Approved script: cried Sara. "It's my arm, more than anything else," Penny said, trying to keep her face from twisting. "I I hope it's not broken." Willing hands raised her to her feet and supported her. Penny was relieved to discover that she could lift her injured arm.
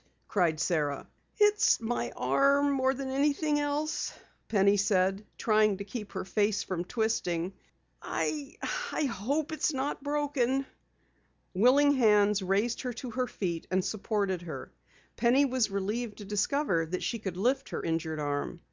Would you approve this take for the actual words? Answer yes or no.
yes